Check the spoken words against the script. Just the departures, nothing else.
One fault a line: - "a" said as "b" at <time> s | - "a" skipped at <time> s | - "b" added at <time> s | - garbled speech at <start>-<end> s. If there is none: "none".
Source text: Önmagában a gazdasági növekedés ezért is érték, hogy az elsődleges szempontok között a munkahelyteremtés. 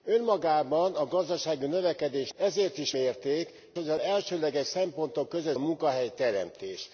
none